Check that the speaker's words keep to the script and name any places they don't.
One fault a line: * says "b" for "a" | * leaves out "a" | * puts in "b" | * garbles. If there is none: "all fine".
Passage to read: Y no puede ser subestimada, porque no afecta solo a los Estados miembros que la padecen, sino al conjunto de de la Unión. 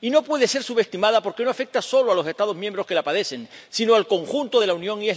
* leaves out "de"